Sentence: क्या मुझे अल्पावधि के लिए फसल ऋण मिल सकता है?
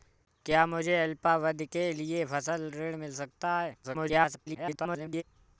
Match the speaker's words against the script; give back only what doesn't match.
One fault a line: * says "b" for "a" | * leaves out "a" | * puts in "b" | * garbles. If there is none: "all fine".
* garbles